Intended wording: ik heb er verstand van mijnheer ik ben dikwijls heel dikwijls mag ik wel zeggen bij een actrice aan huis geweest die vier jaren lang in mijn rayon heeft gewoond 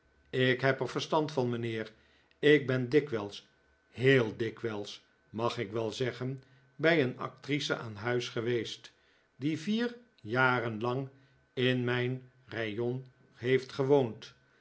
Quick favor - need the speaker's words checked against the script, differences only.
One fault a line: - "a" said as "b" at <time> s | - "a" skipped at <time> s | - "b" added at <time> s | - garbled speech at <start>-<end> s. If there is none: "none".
none